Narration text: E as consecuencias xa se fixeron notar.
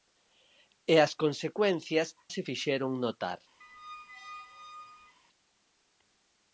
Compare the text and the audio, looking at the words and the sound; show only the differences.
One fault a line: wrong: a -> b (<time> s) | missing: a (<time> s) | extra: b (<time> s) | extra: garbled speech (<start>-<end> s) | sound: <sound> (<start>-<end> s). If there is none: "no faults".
missing: xa (2.1 s)
sound: squeak (3.6-5.2 s)